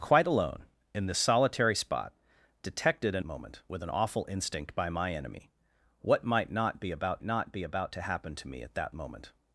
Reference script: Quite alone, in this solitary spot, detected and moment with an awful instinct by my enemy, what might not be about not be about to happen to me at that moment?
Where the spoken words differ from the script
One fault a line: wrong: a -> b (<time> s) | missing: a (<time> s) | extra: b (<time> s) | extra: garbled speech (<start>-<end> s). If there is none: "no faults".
no faults